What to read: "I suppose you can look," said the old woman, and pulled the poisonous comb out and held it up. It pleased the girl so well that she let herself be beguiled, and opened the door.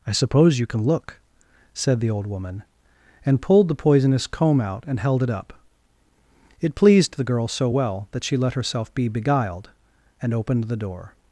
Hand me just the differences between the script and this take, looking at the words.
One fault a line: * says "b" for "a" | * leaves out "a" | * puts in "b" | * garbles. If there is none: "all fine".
all fine